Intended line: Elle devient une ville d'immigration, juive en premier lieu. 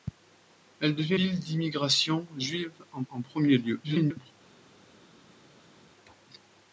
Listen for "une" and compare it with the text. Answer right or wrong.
wrong